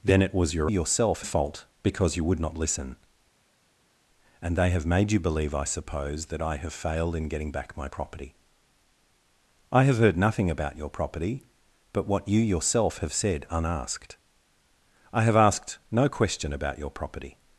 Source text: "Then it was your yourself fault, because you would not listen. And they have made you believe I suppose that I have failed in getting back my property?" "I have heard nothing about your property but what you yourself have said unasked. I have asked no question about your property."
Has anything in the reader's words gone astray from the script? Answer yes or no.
no